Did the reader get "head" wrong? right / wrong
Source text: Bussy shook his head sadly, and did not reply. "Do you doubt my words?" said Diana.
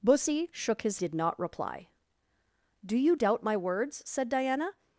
wrong